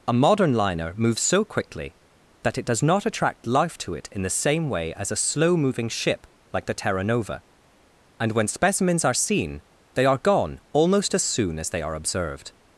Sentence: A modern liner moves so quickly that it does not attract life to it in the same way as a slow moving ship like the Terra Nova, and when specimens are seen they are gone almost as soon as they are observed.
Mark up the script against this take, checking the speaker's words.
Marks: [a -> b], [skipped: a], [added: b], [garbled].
A modern liner moves so quickly that it does not attract life to it in the same way as a slow moving ship like the Terra Nova, and when specimens are seen they are gone almost as soon as they are observed.